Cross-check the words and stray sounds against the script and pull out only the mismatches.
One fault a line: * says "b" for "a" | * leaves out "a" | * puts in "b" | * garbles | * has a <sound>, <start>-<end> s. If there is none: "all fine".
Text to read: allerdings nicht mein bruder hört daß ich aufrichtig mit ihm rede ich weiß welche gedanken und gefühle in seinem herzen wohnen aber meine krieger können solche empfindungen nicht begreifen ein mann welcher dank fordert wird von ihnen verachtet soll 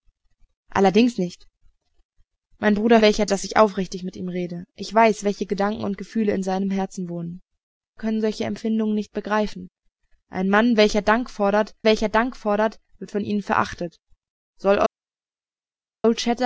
* says "welcher" for "hört"
* leaves out "aber meine krieger"
* puts in "welcher dank fordert"